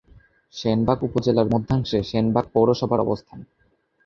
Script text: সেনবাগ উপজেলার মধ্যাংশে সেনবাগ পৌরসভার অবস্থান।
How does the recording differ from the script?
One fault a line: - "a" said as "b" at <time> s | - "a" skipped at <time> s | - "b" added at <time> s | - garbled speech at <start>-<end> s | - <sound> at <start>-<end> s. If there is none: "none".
none